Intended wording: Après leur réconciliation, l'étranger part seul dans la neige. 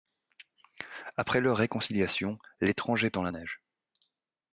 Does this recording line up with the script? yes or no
no